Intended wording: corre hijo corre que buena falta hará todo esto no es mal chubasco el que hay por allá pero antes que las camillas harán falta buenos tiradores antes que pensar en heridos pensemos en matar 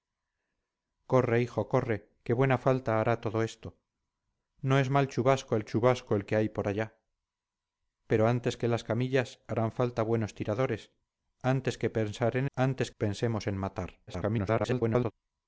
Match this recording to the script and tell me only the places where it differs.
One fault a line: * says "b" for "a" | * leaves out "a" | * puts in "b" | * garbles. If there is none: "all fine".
* puts in "chubasco el"
* says "antes" for "heridos"
* garbles